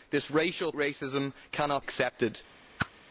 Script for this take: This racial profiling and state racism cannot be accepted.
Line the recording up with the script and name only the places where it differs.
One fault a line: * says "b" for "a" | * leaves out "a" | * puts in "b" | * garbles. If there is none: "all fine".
* leaves out "profiling and state"
* leaves out "be"